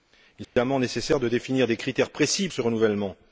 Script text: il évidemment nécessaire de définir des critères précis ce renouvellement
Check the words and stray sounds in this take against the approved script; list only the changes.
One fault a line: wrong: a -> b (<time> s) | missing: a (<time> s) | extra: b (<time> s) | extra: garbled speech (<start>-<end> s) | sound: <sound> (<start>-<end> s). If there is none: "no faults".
sound: dropout (0.4-0.6 s)